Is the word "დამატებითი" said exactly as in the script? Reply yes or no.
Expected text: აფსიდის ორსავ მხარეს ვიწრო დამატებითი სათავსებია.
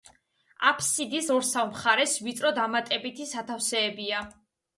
yes